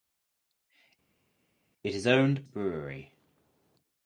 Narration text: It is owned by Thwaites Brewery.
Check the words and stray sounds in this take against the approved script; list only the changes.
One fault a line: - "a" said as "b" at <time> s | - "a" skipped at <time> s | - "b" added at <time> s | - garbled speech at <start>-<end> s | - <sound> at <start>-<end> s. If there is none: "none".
- "by Thwaites" skipped at 2.4 s